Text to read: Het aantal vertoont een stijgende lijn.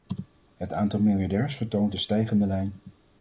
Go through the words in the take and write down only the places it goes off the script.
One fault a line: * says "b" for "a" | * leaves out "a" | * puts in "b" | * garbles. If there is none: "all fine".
* puts in "miljardairs"